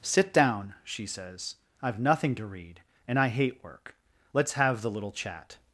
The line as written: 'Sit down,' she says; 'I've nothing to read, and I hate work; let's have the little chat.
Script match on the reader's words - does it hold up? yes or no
yes